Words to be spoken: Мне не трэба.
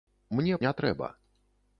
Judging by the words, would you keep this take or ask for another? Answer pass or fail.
pass